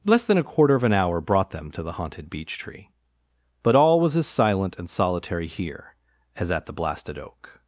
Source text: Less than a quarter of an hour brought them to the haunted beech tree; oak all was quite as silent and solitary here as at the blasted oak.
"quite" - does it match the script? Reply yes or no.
no